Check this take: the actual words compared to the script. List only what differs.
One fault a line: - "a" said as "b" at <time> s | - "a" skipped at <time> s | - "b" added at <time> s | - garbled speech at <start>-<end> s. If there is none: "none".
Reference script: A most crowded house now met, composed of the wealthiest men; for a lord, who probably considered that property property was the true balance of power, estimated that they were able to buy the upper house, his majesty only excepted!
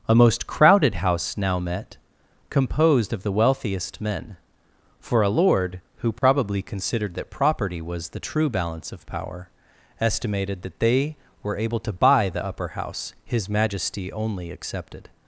- "property" skipped at 7.8 s